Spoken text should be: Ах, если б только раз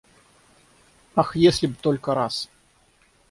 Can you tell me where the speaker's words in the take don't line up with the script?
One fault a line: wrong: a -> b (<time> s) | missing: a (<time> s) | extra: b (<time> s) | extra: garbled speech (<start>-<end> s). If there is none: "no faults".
no faults